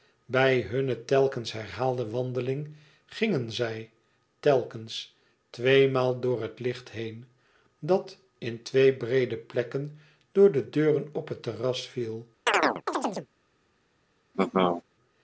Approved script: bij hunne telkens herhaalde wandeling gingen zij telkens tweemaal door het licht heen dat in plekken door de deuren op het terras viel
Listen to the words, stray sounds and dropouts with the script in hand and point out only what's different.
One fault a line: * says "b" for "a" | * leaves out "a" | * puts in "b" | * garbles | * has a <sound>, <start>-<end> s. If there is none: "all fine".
* puts in "twee breede"
* has a chirp, 12.5-13.3 s
* has a laugh, 14.3-14.8 s